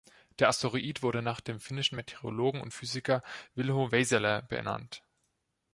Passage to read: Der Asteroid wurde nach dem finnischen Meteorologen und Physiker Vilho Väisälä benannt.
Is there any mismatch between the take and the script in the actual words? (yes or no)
no